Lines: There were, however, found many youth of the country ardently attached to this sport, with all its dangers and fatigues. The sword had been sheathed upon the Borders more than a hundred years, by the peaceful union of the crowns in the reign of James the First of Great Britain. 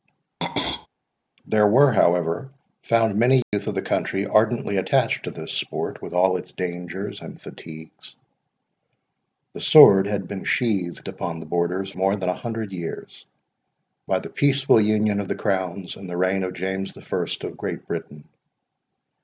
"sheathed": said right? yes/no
yes